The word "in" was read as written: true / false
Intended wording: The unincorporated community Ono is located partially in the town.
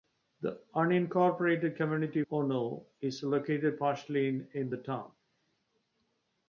true